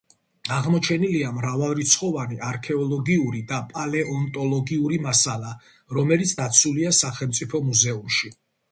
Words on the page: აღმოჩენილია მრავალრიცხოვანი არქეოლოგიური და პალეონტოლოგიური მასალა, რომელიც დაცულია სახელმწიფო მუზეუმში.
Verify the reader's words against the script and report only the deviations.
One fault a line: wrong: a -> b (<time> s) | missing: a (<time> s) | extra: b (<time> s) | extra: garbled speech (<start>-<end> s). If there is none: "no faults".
no faults